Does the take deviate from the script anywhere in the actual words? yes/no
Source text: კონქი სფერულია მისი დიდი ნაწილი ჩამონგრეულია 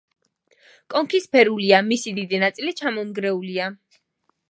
no